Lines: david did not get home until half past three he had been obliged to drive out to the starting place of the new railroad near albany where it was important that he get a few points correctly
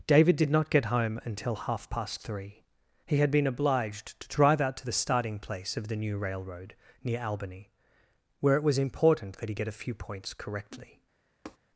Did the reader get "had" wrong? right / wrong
right